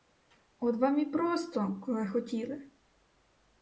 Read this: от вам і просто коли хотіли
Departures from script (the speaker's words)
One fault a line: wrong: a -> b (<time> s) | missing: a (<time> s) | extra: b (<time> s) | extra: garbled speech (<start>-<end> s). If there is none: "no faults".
no faults